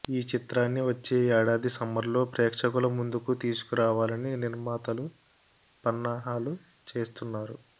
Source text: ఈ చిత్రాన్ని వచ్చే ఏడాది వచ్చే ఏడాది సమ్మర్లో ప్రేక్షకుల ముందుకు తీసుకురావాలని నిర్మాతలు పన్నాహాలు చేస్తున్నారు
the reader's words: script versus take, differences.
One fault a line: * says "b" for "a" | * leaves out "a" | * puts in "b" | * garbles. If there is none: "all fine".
* leaves out "వచ్చే ఏడాది"